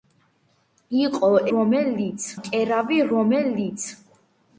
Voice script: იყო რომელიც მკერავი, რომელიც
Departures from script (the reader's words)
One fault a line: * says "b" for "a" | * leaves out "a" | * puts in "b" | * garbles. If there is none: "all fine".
all fine